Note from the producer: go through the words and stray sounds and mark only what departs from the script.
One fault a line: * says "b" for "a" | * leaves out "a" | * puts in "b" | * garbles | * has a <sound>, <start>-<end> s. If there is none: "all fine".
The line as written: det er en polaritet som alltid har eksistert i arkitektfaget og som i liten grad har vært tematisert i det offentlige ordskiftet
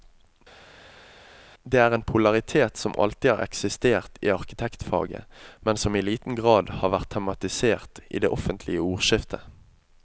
* says "men" for "og"